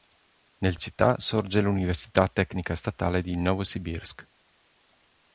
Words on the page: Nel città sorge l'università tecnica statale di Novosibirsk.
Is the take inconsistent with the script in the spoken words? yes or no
no